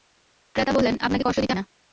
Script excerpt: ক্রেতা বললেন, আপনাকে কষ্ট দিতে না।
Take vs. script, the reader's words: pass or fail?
pass